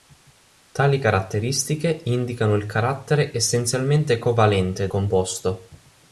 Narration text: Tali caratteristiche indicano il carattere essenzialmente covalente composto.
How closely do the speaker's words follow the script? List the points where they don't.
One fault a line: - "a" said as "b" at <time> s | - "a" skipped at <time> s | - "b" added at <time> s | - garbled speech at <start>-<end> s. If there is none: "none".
none